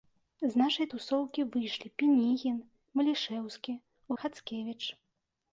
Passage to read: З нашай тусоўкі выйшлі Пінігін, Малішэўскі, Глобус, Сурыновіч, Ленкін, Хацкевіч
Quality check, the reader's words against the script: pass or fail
fail